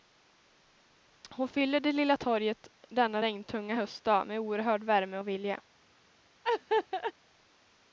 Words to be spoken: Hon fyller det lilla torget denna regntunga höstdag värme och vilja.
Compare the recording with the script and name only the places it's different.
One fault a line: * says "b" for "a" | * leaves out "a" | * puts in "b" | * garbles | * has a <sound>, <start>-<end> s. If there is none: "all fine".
* puts in "med oerhörd"
* has a laugh, 6.4-7.1 s